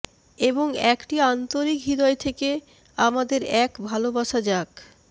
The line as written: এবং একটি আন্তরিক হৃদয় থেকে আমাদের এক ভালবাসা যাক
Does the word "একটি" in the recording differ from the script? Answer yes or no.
no